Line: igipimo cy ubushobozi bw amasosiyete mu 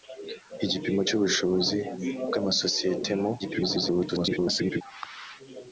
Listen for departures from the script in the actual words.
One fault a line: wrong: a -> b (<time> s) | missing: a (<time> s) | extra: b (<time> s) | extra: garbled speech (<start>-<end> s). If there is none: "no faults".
extra: garbled speech (3.4-4.8 s)